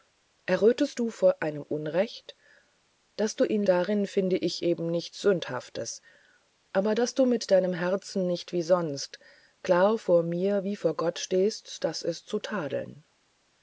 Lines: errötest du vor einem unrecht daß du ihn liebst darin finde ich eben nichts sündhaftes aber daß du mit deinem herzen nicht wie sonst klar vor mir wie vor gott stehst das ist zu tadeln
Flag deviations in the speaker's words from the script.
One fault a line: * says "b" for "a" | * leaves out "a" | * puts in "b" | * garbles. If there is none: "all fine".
* leaves out "liebst"